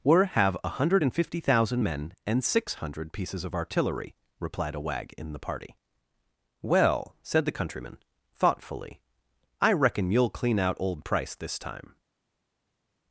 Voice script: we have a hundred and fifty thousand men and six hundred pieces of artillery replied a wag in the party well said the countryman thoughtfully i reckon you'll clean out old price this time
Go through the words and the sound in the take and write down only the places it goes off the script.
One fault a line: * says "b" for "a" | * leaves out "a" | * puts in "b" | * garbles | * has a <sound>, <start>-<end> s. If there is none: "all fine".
* says "were" for "we"